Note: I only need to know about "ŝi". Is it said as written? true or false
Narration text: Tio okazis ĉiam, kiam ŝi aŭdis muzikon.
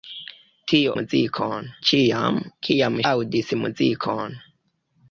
false